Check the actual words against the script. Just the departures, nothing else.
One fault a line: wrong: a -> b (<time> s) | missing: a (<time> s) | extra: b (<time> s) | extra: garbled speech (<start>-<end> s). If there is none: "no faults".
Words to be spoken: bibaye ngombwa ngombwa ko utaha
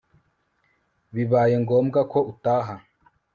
missing: ngombwa (2.0 s)